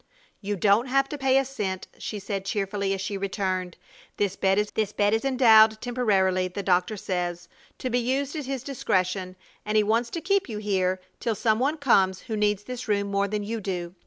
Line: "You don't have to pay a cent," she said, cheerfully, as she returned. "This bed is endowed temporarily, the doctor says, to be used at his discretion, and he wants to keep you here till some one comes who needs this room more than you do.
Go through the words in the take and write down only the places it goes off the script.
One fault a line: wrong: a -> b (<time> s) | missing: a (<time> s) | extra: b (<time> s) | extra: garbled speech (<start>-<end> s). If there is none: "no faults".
extra: this bed is (4.7 s)